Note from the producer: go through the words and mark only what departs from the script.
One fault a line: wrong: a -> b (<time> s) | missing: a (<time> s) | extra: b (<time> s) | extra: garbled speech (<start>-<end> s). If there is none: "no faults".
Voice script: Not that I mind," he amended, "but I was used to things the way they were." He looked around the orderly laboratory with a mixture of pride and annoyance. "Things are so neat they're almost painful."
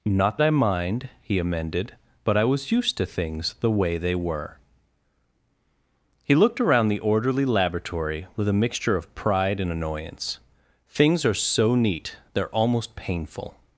missing: that (0.4 s)